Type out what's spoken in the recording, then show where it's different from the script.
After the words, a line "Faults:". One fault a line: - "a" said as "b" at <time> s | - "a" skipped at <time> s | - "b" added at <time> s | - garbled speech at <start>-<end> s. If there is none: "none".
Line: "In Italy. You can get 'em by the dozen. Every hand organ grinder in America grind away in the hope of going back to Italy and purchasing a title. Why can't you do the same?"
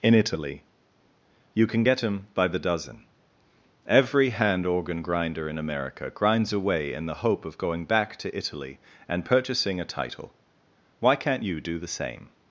"In Italy. You can get 'em by the dozen. Every hand organ grinder in America grinds away in the hope of going back to Italy and purchasing a title. Why can't you do the same?"
Faults:
- "grind" said as "grinds" at 6.1 s